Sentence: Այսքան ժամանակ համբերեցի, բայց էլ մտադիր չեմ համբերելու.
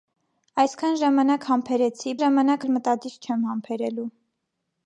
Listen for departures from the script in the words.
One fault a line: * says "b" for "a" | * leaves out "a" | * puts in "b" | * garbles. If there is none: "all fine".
* says "ժամանակ" for "բայց"